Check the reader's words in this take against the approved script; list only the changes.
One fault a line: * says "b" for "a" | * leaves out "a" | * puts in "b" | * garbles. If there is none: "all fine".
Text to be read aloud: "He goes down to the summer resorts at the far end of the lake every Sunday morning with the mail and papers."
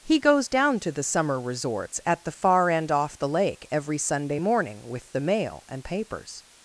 * says "off" for "of"